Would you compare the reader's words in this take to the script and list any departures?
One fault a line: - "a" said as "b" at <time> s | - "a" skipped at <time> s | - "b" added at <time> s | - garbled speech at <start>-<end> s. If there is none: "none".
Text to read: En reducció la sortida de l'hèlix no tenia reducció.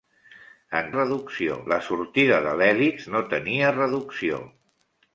none